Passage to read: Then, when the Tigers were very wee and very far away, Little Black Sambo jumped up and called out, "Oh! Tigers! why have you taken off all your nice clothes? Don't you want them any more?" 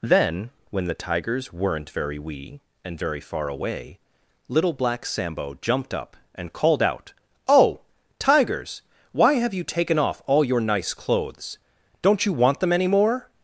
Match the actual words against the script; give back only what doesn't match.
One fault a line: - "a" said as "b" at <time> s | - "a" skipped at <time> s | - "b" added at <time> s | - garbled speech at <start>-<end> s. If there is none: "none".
- "were" said as "weren't" at 1.5 s